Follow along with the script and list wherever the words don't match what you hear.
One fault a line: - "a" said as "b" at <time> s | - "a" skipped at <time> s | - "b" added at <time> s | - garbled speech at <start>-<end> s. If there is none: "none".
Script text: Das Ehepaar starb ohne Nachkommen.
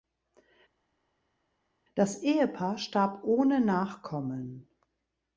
none